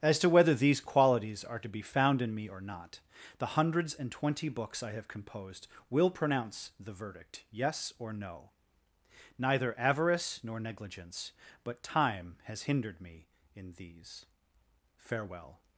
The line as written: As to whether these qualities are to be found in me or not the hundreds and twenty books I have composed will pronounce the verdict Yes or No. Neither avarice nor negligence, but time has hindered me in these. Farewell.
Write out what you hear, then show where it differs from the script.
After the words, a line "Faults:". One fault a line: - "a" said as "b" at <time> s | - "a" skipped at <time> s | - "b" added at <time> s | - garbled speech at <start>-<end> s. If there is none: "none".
As to whether these qualities are to be found in me or not the hundreds and twenty books I have composed will pronounce the verdict Yes or No. Neither avarice nor negligence, but time has hindered me in these. Farewell.
Faults:
none